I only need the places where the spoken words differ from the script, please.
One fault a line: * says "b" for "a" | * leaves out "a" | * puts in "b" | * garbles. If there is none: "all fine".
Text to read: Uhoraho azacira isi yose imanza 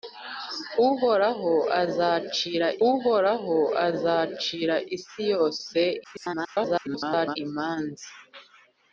* puts in "uhoraho azacira"
* garbles